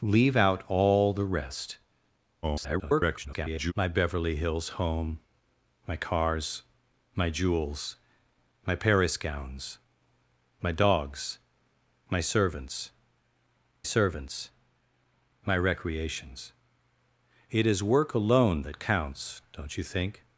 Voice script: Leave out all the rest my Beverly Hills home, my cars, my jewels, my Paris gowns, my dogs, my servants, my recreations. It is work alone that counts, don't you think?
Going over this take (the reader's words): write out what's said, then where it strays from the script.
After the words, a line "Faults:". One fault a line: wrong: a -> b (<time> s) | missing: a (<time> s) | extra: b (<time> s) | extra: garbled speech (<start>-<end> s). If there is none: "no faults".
Leave out all the rest [garbled] my Beverly Hills home, my cars, my jewels, my Paris gowns, my dogs, my servants servants, my recreations. It is work alone that counts, don't you think?
Faults:
extra: garbled speech (2.4-3.7 s)
extra: servants (13.8 s)